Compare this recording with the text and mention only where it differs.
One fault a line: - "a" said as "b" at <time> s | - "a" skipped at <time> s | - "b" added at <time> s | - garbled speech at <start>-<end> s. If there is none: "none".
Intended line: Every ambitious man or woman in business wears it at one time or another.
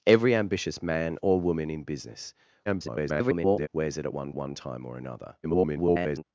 - garbled speech at 2.7-3.7 s
- "one" added at 4.3 s
- garbled speech at 5.4-6.2 s